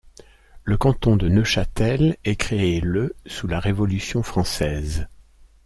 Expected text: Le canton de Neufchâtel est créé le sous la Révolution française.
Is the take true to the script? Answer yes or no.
yes